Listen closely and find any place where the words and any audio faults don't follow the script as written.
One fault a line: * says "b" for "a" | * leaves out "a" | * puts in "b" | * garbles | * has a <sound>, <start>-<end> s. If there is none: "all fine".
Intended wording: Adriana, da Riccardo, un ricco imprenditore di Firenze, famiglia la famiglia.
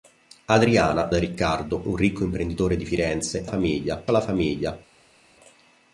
all fine